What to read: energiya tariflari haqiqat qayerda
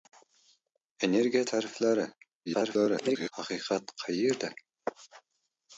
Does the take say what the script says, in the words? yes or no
no